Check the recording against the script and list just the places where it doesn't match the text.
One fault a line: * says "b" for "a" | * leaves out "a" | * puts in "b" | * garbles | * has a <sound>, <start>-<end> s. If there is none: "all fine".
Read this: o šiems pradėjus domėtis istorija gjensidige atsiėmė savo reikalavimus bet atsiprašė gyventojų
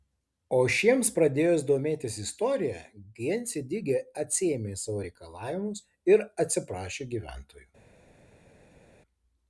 * says "ir" for "bet"